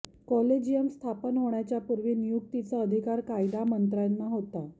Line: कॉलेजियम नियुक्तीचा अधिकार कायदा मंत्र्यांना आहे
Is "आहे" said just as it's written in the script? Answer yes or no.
no